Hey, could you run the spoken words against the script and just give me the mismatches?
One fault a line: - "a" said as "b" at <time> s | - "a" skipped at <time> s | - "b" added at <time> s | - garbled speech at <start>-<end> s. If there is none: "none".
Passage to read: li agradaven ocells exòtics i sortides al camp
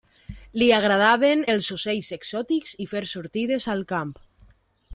- "els" added at 1.5 s
- "fer" added at 2.9 s